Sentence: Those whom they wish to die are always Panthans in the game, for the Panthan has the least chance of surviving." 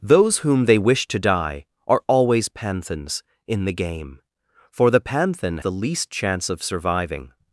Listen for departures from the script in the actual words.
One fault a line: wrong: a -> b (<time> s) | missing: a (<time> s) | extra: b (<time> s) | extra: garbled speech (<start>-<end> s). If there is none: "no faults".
missing: has (5.6 s)